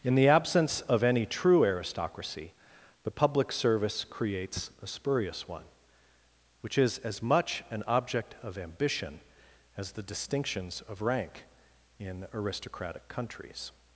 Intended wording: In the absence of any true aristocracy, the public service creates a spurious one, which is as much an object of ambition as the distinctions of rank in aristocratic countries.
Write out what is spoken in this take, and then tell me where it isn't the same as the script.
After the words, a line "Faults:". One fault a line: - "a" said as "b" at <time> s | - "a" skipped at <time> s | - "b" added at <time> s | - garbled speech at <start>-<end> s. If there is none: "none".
In the absence of any true aristocracy, the public service creates a spurious one, which is as much an object of ambition as the distinctions of rank in aristocratic countries.
Faults:
none